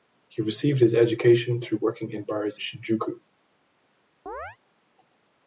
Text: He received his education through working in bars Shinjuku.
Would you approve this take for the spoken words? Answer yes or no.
yes